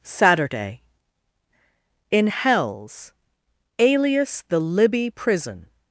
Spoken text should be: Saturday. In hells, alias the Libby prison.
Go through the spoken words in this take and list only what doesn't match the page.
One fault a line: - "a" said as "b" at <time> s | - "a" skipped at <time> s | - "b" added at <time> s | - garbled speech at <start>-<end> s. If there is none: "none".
none